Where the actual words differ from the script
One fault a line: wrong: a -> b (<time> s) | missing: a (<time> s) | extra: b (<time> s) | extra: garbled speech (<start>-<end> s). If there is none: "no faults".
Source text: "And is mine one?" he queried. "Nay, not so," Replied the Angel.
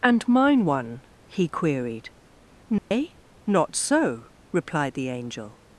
missing: is (0.3 s)